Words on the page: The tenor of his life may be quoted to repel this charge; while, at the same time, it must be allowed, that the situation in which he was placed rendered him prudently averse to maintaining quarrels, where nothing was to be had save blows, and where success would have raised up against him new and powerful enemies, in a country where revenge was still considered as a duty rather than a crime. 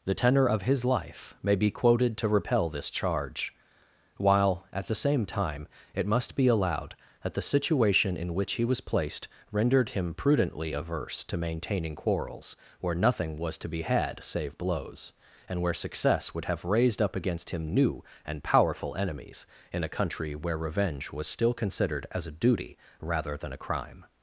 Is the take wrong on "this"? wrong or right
right